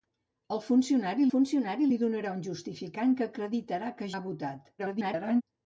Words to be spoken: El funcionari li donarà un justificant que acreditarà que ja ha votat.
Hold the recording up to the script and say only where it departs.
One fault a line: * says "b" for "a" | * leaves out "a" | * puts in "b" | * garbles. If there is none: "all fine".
* puts in "funcionari"
* leaves out "ja"
* garbles